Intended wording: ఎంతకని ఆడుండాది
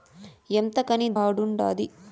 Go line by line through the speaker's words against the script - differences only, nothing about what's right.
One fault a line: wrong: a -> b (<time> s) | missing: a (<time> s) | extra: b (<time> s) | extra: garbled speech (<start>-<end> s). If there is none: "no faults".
no faults